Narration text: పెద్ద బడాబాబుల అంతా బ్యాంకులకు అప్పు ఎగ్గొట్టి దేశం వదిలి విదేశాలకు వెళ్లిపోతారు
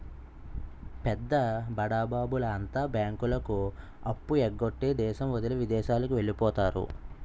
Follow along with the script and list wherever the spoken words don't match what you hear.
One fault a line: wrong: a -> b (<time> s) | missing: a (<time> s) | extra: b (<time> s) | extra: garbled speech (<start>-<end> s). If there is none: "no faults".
no faults